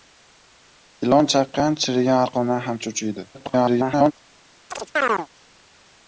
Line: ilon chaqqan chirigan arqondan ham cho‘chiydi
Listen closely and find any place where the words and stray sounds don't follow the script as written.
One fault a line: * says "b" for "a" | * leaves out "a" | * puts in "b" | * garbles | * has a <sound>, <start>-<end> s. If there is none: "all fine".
* garbles
* has a chirp, 4.7-5.3 s